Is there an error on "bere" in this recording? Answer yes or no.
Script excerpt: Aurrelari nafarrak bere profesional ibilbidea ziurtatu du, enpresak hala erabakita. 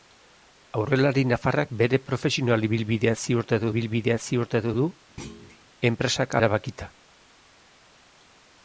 no